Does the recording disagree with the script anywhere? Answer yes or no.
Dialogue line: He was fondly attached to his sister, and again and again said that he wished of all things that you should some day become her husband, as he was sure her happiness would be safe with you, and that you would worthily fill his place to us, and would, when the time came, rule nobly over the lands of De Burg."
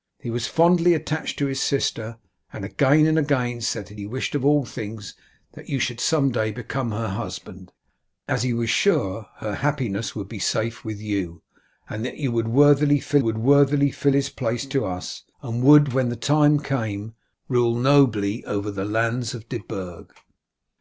yes